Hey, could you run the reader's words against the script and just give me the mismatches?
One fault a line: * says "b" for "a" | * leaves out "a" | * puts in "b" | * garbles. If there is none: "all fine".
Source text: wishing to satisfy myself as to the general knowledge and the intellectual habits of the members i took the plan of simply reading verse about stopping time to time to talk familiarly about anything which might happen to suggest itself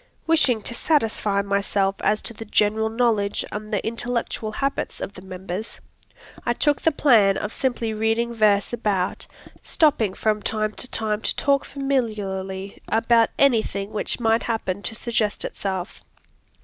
* puts in "from"